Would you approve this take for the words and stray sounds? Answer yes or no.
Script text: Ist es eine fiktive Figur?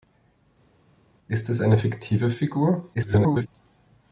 no